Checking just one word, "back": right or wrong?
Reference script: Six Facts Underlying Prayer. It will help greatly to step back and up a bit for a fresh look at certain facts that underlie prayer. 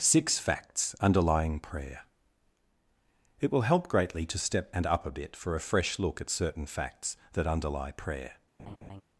wrong